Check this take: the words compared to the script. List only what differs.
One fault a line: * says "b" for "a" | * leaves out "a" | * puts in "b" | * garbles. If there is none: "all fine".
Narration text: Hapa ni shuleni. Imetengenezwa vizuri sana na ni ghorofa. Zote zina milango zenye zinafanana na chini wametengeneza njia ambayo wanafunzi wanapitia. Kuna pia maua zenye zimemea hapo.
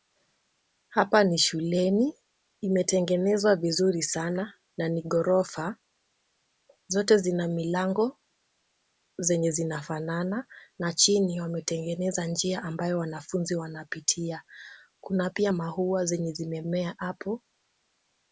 all fine